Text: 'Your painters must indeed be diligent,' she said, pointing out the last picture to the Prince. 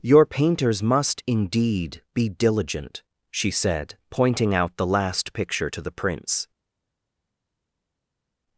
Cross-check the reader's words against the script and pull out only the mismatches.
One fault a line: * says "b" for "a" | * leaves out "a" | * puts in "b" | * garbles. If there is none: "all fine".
all fine